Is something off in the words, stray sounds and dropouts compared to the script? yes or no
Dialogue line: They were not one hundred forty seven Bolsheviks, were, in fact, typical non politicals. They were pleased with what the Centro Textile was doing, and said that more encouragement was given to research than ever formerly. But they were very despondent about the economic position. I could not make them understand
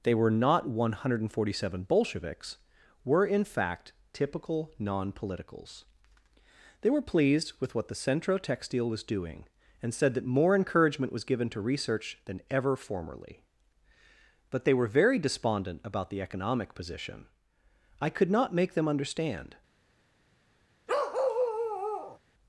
yes